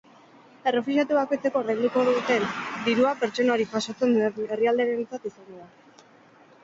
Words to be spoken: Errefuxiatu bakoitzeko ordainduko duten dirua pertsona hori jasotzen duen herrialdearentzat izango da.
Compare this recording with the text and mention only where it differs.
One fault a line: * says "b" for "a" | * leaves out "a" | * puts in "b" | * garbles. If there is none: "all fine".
all fine